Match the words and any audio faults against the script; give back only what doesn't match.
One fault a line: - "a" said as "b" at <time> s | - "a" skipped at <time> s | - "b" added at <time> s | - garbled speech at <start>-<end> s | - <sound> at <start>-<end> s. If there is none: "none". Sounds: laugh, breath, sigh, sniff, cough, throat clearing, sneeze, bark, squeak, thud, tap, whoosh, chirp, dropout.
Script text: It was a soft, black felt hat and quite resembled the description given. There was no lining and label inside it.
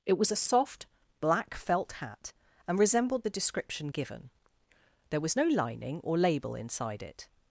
- "quite" skipped at 2.8 s
- "and" said as "or" at 6.0 s